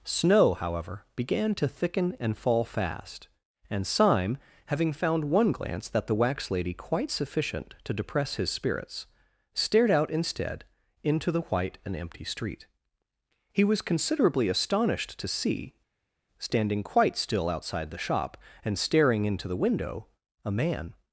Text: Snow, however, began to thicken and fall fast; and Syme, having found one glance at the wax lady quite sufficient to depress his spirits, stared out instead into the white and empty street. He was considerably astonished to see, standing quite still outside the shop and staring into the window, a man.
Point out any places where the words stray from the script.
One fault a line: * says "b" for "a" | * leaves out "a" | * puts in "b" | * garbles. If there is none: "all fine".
* says "that" for "at"